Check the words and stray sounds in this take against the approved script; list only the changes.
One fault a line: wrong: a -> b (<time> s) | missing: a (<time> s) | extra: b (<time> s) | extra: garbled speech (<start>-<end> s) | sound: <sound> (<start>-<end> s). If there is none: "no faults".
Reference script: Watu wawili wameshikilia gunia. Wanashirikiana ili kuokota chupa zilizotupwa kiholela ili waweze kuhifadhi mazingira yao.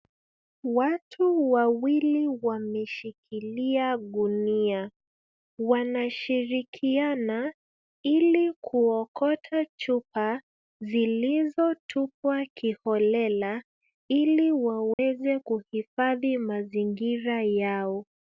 sound: dropout (14.9-15.0 s)